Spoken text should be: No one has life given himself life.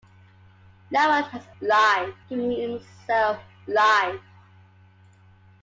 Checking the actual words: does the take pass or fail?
pass